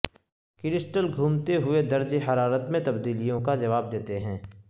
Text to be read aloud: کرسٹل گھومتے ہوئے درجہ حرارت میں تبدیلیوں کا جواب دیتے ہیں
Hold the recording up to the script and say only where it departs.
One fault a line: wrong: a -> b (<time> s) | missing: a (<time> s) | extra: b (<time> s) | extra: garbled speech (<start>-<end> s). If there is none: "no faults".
no faults